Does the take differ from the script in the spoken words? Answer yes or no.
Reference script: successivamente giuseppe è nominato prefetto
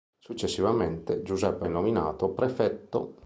no